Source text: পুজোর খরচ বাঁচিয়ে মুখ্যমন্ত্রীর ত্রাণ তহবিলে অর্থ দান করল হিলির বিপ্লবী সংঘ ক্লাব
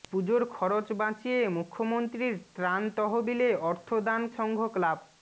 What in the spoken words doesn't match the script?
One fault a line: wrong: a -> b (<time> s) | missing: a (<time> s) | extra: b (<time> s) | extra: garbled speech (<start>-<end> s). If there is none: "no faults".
missing: করল হিলির বিপ্লবী (4.2 s)